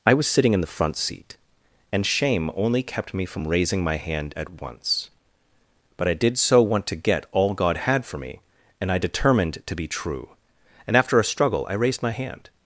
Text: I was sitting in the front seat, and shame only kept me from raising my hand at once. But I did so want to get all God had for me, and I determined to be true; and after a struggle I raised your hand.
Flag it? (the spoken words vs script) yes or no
yes